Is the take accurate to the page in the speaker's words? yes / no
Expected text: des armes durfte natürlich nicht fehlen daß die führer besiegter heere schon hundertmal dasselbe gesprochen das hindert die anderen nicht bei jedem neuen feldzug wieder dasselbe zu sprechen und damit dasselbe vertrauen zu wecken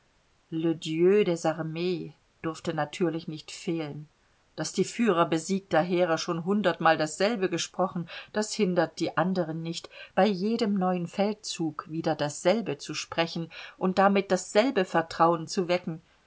yes